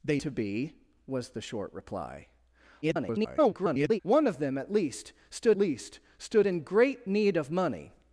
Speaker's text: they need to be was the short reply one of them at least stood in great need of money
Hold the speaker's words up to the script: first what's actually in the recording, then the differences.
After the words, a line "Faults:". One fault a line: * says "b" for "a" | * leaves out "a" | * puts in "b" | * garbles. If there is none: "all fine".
they to be was the short reply [garbled] one of them at least stood least stood in great need of money
Faults:
* leaves out "need"
* garbles
* puts in "least stood"